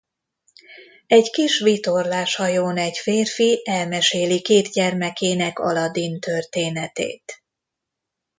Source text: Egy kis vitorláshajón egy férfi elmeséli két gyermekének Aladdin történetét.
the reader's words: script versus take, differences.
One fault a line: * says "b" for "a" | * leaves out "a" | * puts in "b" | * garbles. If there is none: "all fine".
all fine